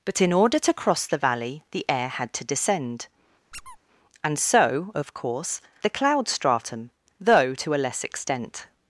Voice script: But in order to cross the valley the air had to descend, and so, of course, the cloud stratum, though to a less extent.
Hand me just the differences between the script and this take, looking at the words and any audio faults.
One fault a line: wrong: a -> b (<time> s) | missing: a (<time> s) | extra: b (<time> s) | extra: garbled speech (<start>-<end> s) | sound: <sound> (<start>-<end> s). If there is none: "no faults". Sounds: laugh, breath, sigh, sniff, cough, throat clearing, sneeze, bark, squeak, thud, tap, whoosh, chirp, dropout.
sound: squeak (3.5-3.8 s)